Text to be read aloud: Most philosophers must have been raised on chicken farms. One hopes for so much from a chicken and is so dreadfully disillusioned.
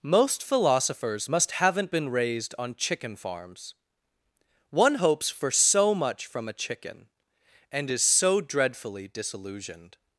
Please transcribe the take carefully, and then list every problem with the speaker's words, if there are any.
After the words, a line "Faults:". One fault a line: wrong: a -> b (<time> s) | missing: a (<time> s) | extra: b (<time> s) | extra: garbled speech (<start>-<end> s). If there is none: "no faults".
Most philosophers must haven't been raised on chicken farms. One hopes for so much from a chicken and is so dreadfully disillusioned.
Faults:
wrong: have -> haven't (1.5 s)